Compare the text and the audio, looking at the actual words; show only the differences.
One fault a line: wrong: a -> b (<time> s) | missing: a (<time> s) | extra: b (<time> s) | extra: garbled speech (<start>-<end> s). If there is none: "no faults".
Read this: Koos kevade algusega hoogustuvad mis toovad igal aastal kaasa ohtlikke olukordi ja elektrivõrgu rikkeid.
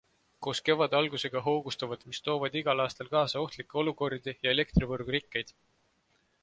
no faults